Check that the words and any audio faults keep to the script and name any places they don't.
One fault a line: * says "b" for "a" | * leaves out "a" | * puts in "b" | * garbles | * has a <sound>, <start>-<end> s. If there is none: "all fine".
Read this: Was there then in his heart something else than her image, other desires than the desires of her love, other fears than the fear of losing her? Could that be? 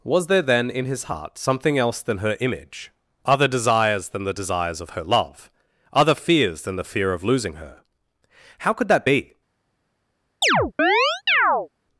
* puts in "How"
* has a chirp, 10.4-11.7 s